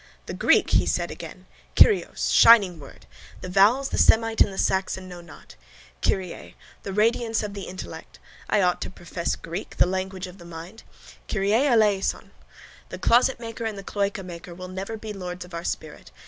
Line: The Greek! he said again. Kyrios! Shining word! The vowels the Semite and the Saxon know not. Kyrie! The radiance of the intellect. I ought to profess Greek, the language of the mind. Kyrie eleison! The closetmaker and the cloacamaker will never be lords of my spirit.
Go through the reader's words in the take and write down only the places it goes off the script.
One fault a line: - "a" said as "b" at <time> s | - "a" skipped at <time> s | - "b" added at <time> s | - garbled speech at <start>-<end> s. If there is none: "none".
- "my" said as "our" at 15.5 s